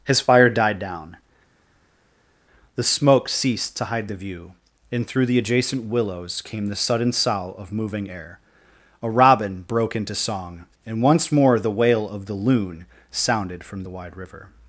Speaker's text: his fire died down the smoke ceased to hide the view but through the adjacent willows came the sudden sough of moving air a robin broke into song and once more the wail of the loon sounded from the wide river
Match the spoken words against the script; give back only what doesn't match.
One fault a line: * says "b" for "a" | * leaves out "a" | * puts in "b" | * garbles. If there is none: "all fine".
* says "and" for "but"